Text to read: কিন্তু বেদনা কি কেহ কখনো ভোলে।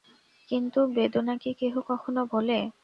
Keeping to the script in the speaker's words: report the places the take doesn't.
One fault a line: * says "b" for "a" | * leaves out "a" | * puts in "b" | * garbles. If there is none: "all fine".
all fine